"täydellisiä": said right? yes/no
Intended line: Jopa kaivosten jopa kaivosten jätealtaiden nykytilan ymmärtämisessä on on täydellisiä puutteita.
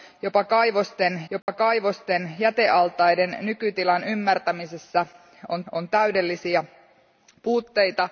yes